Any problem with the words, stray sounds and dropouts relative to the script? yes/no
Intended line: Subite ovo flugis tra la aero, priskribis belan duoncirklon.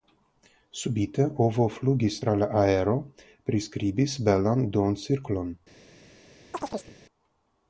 yes